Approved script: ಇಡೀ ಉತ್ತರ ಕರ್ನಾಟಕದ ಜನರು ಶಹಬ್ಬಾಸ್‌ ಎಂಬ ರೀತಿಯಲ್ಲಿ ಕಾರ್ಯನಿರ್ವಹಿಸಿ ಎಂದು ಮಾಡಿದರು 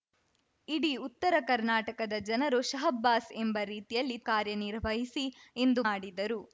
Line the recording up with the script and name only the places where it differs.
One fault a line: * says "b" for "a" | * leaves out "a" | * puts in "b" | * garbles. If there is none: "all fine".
all fine